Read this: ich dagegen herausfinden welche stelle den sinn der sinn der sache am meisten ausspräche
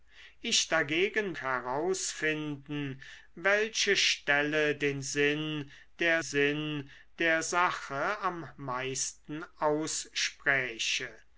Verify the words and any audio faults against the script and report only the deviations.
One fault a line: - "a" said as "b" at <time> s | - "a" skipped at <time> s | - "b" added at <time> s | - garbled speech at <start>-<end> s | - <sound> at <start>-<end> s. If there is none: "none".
none